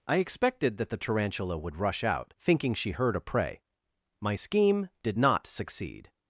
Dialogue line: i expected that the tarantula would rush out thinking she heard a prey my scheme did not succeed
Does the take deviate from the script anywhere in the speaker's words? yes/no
no